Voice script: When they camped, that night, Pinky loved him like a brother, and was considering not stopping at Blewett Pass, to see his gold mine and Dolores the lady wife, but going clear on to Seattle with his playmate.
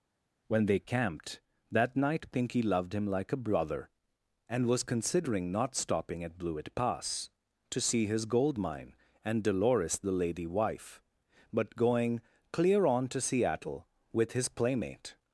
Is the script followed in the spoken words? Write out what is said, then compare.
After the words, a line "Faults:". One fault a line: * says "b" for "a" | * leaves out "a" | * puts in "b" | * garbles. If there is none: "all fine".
When they camped, that night, Pinky loved him like a brother, and was considering not stopping at Blewett Pass, to see his gold mine and Dolores the lady wife, but going clear on to Seattle with his playmate.
Faults:
all fine